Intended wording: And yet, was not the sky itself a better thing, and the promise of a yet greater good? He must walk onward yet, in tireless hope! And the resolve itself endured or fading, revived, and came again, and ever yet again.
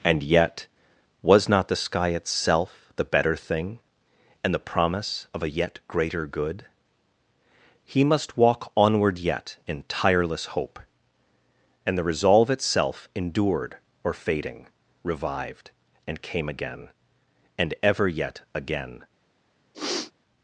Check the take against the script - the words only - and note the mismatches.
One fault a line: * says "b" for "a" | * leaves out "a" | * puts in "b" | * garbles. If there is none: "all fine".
* says "the" for "a"